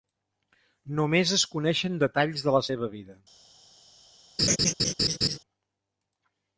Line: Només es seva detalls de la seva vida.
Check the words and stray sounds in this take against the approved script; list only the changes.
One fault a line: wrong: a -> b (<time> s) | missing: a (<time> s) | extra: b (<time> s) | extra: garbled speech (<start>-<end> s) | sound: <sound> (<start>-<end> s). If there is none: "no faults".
wrong: seva -> coneixen (1.6 s)
sound: laugh (4.4-5.4 s)